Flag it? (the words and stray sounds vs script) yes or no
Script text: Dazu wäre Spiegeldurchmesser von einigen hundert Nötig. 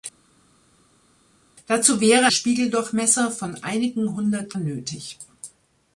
no